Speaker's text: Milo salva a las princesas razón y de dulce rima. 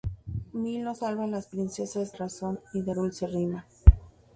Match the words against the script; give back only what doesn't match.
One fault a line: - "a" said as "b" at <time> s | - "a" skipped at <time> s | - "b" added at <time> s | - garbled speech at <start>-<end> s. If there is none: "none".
none